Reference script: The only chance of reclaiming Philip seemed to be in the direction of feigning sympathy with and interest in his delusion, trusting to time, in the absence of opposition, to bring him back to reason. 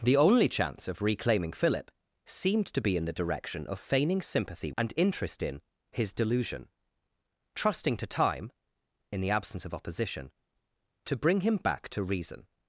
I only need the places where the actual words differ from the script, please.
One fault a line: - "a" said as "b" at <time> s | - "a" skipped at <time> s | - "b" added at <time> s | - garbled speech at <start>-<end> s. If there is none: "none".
- "with" skipped at 4.7 s